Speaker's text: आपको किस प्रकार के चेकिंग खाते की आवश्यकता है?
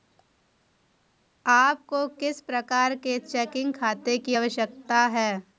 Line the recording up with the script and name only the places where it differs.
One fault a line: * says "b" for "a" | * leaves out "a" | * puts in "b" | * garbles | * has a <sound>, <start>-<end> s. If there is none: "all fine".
all fine